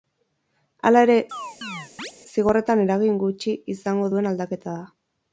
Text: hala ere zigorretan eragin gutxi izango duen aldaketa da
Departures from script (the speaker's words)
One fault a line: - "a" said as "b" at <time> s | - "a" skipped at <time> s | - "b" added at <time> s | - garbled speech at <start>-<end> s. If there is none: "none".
none